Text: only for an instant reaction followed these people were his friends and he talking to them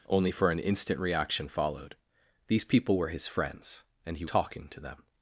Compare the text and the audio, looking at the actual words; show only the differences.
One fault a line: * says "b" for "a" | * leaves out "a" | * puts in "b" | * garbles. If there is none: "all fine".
all fine